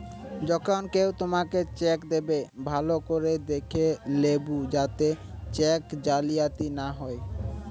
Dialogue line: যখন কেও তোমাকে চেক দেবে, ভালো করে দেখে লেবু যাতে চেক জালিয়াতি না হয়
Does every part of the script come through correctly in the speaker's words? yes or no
yes